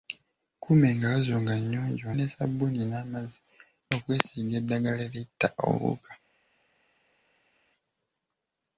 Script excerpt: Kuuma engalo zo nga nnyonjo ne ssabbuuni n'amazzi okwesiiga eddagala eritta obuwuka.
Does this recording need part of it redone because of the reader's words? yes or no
no